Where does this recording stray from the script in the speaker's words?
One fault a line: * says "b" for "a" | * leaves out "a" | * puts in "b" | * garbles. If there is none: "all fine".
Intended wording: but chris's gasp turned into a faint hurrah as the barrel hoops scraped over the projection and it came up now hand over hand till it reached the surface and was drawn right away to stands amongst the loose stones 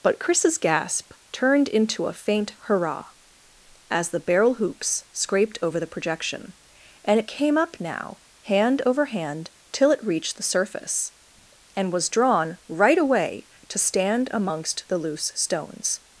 * says "stand" for "stands"